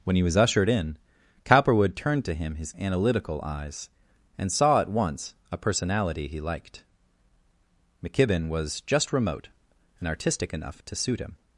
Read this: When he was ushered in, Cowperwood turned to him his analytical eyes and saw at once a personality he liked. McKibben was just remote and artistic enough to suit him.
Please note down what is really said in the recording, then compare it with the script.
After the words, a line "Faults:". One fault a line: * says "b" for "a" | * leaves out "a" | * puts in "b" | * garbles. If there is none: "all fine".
When he was ushered in, Cowperwood turned to him his analytical eyes and saw at once a personality he liked. McKibben was just remote and artistic enough to suit him.
Faults:
all fine